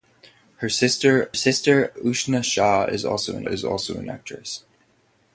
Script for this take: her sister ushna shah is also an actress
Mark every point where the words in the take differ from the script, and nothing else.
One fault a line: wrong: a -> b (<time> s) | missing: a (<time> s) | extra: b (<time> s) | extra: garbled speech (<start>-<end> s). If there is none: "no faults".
extra: sister (1.3 s)
extra: is also an (3.4 s)